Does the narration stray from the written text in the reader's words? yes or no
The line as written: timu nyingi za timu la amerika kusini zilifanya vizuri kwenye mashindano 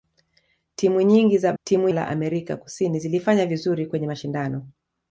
no